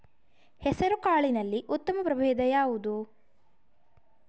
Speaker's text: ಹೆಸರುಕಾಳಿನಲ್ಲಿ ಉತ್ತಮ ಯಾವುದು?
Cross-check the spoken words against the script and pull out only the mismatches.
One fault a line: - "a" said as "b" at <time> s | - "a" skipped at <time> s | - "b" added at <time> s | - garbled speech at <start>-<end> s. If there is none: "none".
- "ಪ್ರಭೇಧ" added at 2.0 s